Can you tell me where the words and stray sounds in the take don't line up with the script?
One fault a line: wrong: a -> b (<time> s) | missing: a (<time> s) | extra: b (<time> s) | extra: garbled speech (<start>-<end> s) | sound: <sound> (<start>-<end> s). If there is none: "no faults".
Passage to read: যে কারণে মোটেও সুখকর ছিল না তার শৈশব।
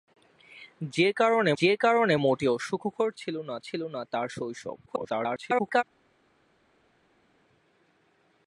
extra: যে কারণে (1.6 s)
extra: ছিল না (3.6 s)
extra: garbled speech (4.9-5.8 s)